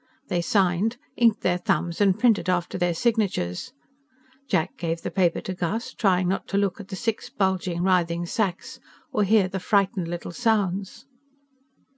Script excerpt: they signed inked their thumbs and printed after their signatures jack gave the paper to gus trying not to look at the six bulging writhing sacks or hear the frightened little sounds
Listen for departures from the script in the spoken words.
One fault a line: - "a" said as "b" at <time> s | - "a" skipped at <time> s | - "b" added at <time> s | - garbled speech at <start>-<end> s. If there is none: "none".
none